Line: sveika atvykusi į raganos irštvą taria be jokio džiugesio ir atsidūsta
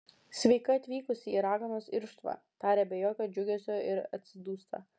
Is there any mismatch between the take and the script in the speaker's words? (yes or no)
no